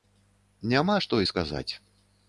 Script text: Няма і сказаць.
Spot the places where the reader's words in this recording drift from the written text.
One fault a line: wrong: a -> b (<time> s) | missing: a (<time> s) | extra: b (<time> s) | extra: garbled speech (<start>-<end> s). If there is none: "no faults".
extra: што (1.1 s)